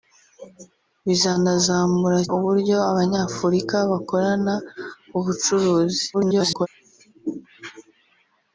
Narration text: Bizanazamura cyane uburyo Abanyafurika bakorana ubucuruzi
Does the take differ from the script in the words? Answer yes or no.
yes